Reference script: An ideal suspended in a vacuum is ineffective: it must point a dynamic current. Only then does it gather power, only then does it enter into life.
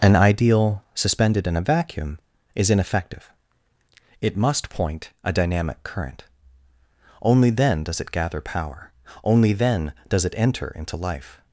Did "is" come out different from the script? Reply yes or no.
no